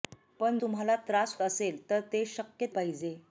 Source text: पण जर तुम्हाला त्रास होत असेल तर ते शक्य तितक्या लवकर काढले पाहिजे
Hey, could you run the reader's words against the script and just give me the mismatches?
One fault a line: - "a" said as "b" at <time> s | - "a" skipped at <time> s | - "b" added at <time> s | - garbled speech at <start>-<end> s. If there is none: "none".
- "जर" skipped at 0.6 s
- "होत" skipped at 1.4 s
- "तितक्या लवकर काढले" skipped at 2.7 s